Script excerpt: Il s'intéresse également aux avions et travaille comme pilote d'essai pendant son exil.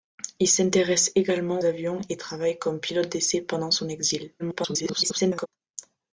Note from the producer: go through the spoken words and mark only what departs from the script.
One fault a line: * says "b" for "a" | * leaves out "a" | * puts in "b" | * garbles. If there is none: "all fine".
* leaves out "aux"
* garbles